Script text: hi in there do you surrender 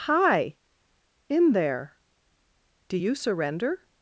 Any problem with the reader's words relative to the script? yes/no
no